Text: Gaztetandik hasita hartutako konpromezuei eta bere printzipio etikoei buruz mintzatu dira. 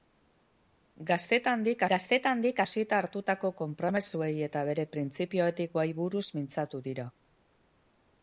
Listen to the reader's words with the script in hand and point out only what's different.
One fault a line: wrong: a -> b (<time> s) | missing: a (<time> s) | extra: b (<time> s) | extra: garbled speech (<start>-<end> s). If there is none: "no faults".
extra: gaztetandik (1.9 s)